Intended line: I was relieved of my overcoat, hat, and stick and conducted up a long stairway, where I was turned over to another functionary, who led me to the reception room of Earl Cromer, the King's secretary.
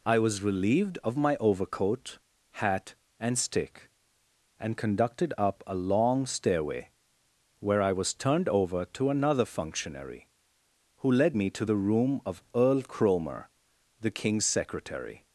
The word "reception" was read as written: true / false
false